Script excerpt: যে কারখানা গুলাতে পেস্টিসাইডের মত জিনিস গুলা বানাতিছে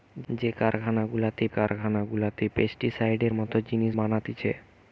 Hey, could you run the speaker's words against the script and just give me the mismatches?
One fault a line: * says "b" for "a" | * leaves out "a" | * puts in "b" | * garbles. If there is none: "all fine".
* puts in "কারখানা গুলাতে"
* leaves out "গুলা"